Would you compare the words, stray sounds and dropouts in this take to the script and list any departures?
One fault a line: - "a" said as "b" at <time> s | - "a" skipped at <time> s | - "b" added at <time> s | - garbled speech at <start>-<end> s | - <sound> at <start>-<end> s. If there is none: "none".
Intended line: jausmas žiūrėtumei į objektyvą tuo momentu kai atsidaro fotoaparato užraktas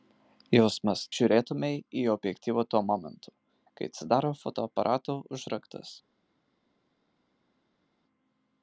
none